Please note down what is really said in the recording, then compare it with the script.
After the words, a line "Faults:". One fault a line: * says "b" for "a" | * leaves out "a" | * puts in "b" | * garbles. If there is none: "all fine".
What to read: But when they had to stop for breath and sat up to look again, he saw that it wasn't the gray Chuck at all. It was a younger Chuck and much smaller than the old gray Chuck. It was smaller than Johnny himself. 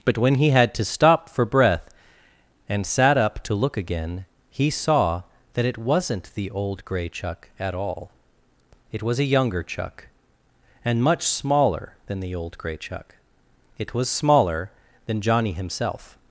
But when he had to stop for breath and sat up to look again, he saw that it wasn't the old gray Chuck at all. It was a younger Chuck and much smaller than the old gray Chuck. It was smaller than Johnny himself.
Faults:
* says "he" for "they"
* puts in "old"